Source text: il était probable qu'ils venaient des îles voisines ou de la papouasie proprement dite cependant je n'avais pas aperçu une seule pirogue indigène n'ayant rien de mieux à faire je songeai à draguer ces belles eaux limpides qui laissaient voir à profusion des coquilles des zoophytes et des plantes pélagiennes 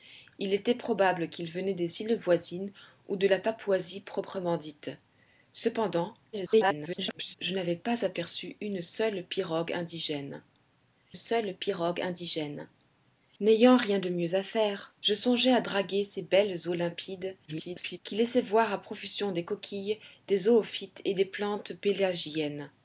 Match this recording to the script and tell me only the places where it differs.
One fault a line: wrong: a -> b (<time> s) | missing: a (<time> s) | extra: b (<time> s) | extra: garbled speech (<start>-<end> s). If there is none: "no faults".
extra: garbled speech (6.3-7.3 s)
extra: seule pirogue indigène (11.1 s)
extra: garbled speech (17.5-18.0 s)